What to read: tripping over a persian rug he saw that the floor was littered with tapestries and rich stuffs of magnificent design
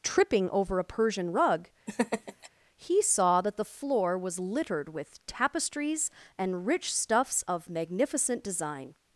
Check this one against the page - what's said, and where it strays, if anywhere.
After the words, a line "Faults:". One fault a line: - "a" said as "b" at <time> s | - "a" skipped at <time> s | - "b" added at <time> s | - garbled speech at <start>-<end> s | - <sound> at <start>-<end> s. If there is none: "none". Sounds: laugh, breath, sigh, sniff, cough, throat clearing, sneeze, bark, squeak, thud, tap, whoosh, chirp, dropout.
tripping over a persian rug he saw that the floor was littered with tapestries and rich stuffs of magnificent design
Faults:
- laugh at 1.9-2.5 s